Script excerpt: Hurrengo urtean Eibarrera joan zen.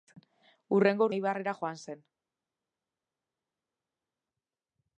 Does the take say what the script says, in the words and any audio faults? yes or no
no